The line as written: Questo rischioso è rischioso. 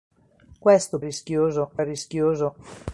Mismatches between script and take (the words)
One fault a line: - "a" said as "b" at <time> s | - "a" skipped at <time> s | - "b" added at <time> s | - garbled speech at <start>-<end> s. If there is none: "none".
none